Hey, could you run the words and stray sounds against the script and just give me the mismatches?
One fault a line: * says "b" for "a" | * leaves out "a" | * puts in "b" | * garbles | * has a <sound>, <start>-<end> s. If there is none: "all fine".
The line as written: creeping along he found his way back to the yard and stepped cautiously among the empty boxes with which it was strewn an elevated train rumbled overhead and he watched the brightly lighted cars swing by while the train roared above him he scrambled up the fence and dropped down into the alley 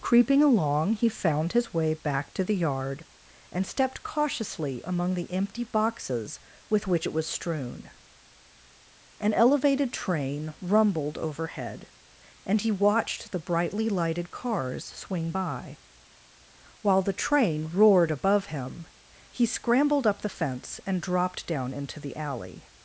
all fine